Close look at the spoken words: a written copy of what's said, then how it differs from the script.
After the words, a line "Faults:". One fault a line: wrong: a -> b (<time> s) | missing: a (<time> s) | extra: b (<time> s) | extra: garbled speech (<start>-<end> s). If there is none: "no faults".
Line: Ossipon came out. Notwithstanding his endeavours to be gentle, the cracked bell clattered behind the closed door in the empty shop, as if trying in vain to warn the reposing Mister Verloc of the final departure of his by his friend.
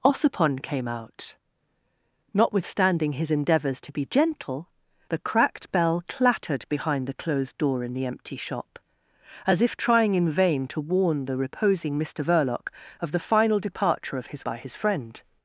Ossipon came out. Notwithstanding his endeavours to be gentle, the cracked bell clattered behind the closed door in the empty shop, as if trying in vain to warn the reposing Mister Verloc of the final departure of his by his friend.
Faults:
no faults